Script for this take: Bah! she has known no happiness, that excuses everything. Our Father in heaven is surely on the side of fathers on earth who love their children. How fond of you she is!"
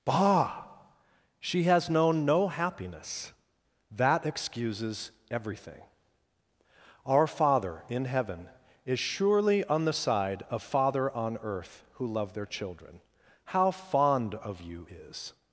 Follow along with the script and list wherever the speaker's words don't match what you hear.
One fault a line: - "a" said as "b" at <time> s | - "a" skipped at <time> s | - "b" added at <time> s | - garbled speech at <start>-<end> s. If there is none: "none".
- "fathers" said as "father" at 10.6 s
- "she" skipped at 14.9 s